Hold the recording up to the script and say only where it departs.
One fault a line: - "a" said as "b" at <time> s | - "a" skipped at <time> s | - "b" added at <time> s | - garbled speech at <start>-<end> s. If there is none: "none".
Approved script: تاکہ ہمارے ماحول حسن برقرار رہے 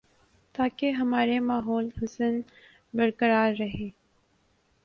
none